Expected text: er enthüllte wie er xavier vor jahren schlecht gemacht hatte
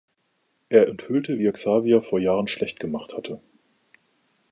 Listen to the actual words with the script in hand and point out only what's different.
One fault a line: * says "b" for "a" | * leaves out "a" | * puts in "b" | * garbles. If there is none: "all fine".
all fine